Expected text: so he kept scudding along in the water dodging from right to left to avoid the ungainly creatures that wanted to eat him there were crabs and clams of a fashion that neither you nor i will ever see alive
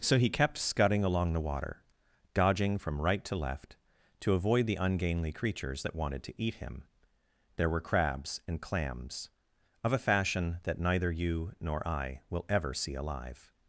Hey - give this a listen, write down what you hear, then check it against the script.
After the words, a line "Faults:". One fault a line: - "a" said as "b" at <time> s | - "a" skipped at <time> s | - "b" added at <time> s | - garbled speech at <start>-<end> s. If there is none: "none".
so he kept scudding along the water dodging from right to left to avoid the ungainly creatures that wanted to eat him there were crabs and clams of a fashion that neither you nor i will ever see alive
Faults:
- "in" skipped at 1.3 s